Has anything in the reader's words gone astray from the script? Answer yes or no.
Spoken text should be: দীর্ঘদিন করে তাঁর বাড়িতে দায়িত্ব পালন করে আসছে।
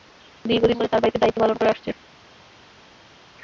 no